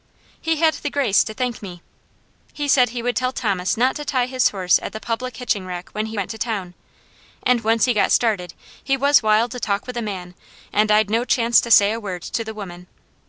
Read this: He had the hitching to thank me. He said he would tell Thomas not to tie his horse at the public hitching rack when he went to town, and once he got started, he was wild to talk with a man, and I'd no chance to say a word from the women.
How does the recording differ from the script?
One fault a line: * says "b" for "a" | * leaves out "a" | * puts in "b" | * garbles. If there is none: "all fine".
* says "grace" for "hitching"
* says "to" for "from"